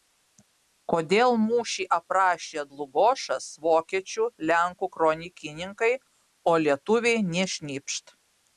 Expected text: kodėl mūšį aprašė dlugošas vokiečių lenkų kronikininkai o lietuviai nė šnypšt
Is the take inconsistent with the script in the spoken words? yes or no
no